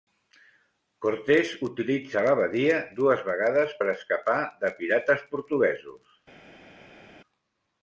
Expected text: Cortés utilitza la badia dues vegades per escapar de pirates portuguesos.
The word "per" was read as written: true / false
true